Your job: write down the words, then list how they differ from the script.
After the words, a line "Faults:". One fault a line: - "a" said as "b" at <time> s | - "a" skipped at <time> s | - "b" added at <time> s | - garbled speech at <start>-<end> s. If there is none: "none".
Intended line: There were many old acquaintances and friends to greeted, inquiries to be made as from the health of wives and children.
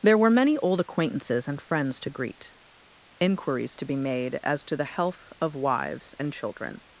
There were many old acquaintances and friends to greet, inquiries to be made as to the health of wives and children.
Faults:
- "greeted" said as "greet" at 2.1 s
- "from" said as "to" at 4.6 s